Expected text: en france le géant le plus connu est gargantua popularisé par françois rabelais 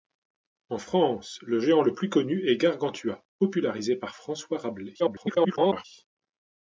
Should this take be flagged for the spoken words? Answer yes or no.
yes